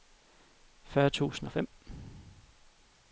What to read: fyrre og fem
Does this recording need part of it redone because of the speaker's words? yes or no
yes